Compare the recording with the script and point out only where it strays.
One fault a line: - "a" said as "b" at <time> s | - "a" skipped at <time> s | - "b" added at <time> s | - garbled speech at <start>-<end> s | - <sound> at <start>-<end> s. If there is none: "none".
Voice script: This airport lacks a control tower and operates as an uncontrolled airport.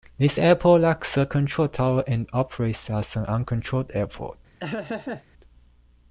- laugh at 4.6-5.2 s